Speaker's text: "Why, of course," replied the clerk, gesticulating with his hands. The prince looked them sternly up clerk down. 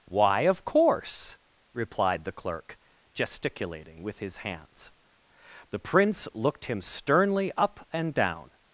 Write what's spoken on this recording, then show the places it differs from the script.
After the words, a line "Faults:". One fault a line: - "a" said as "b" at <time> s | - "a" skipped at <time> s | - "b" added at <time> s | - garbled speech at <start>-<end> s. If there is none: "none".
"Why, of course," replied the clerk, gesticulating with his hands. The prince looked him sternly up and down.
Faults:
- "them" said as "him" at 6.7 s
- "clerk" said as "and" at 7.9 s